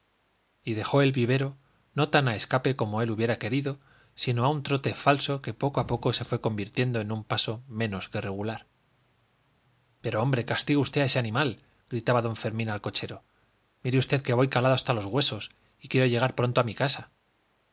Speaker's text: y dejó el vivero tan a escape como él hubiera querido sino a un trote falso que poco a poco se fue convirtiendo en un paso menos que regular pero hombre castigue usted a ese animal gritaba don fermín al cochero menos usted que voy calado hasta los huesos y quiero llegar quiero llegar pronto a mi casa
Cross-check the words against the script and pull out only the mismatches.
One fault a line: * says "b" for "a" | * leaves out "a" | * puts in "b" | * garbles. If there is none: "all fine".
* puts in "no"
* says "mire" for "menos"
* leaves out "quiero llegar"